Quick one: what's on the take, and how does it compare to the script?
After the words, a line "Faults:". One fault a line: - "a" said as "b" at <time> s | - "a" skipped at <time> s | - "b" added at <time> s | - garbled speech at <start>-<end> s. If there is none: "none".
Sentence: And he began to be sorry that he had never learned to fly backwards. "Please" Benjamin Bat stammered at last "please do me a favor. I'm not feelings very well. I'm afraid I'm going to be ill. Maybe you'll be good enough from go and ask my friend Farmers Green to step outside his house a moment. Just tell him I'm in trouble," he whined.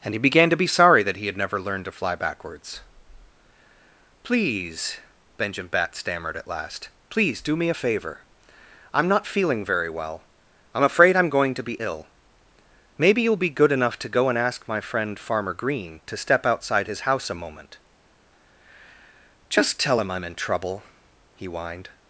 And he began to be sorry that he had never learned to fly backwards. "Please" Benjamin Bat stammered at last "please do me a favor. I'm not feeling very well. I'm afraid I'm going to be ill. Maybe you'll be good enough to go and ask my friend Farmer Green to step outside his house a moment. Just tell him I'm in trouble," he whined.
Faults:
- "feelings" said as "feeling" at 9.3 s
- "from" said as "to" at 14.0 s
- "Farmers" said as "Farmer" at 15.2 s